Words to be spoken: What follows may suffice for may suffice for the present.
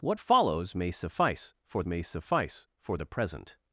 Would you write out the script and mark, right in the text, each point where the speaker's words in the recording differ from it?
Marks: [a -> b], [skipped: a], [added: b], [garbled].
What follows may suffice for may suffice for the present.